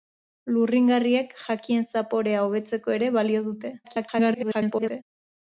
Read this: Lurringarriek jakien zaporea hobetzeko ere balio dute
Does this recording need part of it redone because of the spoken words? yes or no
yes